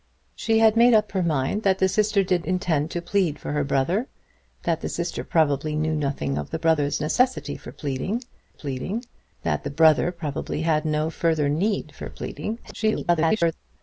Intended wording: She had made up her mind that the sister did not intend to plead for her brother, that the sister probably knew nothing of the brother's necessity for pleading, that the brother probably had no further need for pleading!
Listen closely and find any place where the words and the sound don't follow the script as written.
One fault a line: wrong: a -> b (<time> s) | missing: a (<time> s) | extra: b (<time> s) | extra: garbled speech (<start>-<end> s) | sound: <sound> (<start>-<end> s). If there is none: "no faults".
missing: not (2.5 s)
extra: pleading (8.5 s)
extra: garbled speech (12.6-13.5 s)